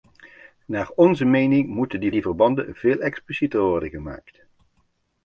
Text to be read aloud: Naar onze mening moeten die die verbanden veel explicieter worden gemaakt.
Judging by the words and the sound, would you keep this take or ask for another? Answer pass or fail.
pass